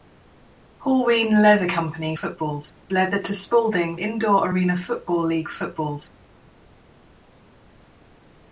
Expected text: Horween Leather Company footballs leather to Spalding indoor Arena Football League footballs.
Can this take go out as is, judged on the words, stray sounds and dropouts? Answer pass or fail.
pass